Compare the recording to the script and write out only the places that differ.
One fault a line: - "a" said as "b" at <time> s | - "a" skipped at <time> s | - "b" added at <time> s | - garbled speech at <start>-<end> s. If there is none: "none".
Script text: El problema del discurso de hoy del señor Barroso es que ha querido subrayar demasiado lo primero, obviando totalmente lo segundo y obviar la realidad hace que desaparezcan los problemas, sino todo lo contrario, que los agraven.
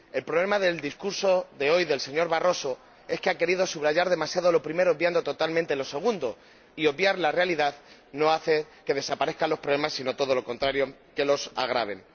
- "no" added at 8.1 s